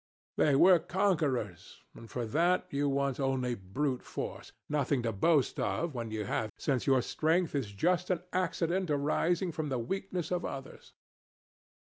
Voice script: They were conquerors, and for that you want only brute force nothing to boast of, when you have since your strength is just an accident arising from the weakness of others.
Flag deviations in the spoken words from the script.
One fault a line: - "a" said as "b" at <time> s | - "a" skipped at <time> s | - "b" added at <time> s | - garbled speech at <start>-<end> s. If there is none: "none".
none